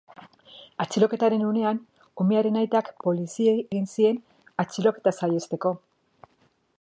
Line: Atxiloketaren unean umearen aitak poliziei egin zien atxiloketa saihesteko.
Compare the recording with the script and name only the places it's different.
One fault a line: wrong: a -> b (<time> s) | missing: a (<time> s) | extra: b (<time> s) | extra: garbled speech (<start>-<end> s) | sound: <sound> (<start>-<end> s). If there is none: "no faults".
no faults